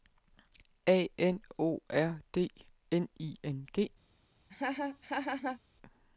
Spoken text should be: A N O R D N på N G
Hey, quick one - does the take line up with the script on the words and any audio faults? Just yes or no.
no